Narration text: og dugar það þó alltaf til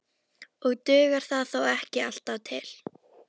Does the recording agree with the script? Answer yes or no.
no